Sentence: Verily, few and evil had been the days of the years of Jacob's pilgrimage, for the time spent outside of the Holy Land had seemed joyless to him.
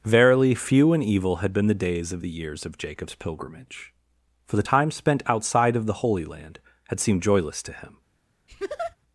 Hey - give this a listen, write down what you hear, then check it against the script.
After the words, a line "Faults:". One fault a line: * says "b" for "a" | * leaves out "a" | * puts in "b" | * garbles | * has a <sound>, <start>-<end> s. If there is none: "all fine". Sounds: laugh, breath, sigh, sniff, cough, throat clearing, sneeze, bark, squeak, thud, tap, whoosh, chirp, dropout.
Verily, few and evil had been the days of the years of Jacob's pilgrimage, for the time spent outside of the Holy Land had seemed joyless to him.
Faults:
* has a laugh, 8.5-9.0 s